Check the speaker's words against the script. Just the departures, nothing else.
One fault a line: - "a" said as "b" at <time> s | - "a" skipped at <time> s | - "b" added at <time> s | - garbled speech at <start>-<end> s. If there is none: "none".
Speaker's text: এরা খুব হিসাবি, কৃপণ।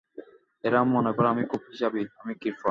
- "মনে করে আমি" added at 0.9 s
- "আমি" added at 2.2 s